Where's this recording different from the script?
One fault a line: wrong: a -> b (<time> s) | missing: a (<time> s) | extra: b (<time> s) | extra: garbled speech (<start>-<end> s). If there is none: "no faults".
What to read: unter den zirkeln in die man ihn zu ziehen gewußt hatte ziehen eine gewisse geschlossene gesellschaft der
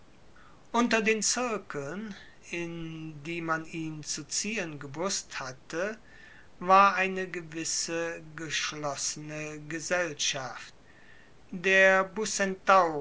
wrong: ziehen -> war (6.6 s)